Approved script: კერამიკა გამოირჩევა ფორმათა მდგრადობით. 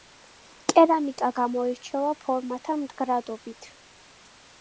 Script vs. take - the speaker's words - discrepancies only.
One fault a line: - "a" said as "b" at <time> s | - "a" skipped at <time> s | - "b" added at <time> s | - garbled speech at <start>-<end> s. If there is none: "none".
none